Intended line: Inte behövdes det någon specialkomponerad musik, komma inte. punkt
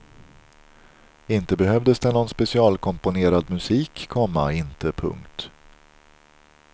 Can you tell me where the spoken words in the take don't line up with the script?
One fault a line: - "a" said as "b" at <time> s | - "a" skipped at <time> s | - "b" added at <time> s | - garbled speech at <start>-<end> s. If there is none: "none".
none